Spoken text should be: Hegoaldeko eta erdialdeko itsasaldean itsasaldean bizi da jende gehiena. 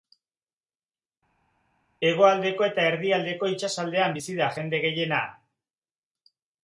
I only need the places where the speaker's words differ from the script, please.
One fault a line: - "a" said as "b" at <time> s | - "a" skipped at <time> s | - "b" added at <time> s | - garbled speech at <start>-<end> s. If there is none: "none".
- "itsasaldean" skipped at 4.1 s